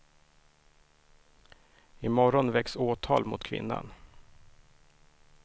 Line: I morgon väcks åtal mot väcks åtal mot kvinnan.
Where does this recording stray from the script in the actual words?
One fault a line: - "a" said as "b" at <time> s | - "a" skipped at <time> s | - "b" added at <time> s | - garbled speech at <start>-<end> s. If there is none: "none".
- "väcks åtal mot" skipped at 3.4 s